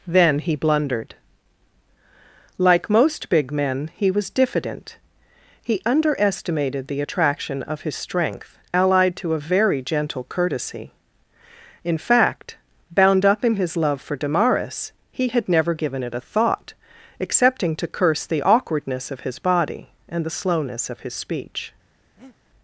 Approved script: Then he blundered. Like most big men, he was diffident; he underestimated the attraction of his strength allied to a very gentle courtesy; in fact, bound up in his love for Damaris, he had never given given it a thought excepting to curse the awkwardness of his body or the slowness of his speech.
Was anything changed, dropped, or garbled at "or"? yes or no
yes